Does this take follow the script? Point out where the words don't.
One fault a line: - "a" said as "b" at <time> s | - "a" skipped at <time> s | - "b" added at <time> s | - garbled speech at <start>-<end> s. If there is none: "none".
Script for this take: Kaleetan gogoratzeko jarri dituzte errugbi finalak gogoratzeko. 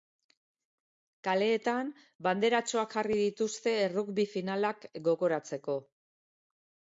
- "gogoratzeko" said as "banderatxoak" at 2.3 s